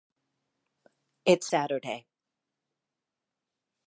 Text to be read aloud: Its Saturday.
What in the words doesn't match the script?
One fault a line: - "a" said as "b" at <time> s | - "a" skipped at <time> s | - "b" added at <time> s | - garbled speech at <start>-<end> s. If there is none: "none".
none